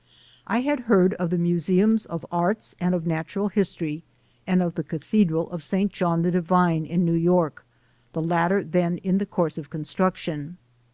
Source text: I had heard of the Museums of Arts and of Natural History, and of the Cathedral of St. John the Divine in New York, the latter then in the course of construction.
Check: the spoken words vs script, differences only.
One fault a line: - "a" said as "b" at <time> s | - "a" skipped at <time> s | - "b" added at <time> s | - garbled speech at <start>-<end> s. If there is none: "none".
none